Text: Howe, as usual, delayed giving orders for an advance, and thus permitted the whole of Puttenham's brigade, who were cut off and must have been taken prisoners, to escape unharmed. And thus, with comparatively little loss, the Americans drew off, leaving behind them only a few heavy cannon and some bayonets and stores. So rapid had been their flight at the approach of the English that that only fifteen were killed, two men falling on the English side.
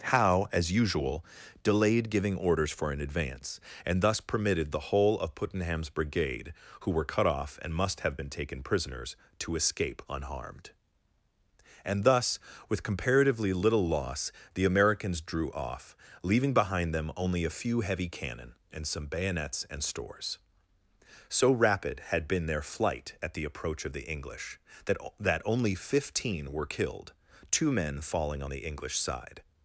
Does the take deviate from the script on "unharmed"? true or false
false